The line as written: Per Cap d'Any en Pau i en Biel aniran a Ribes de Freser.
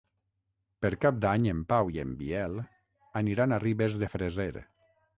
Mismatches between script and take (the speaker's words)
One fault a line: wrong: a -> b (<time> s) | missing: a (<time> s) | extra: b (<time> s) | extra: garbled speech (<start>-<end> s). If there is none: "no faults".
no faults